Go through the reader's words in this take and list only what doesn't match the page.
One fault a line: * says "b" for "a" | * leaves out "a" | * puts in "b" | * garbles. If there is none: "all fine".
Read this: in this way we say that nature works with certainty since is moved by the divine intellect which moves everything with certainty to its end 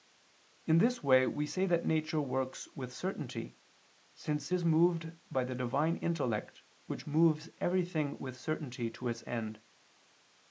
all fine